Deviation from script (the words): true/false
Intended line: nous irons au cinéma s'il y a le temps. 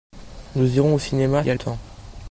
true